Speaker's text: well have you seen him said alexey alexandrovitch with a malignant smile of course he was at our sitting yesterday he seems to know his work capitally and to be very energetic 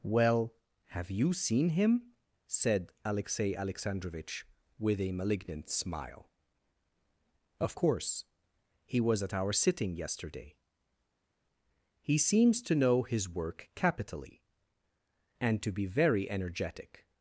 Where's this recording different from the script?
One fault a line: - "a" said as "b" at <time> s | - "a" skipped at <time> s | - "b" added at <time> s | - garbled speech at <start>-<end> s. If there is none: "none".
none